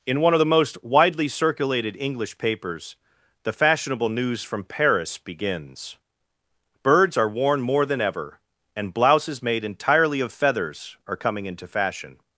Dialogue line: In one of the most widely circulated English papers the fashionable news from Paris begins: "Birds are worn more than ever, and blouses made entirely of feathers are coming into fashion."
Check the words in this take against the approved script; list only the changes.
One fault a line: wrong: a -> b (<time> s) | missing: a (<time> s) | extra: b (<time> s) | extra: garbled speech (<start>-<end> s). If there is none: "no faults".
no faults